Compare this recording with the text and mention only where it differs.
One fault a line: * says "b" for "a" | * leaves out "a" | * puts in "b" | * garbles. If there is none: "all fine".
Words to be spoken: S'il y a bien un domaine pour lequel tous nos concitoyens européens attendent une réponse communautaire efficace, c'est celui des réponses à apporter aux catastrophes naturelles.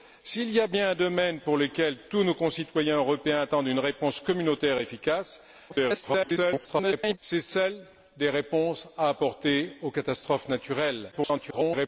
* garbles
* garbles